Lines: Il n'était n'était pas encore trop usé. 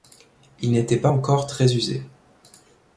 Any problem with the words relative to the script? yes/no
yes